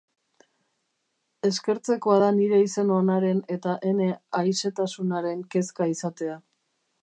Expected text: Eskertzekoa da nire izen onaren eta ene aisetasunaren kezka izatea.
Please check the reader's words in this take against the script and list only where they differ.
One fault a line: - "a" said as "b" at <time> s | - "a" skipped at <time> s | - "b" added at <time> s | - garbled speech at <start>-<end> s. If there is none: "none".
none